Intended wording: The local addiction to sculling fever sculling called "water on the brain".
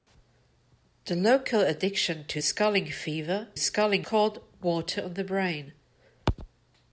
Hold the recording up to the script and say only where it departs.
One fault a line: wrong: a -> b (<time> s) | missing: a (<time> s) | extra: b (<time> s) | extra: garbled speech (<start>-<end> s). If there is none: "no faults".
no faults